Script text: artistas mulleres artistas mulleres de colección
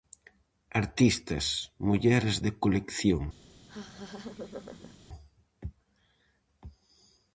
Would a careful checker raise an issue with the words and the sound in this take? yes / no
yes